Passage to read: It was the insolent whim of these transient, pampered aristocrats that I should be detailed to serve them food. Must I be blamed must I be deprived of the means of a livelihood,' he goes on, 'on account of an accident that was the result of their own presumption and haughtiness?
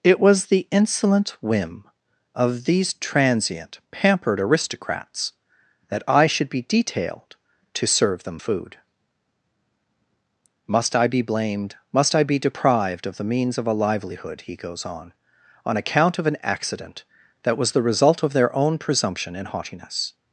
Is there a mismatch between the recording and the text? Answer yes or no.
no